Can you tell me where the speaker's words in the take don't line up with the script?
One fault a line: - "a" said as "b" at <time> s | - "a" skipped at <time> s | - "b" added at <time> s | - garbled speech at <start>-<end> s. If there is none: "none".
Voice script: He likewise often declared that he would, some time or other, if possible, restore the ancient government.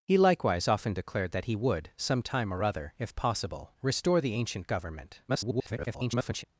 - garbled speech at 5.3-6.4 s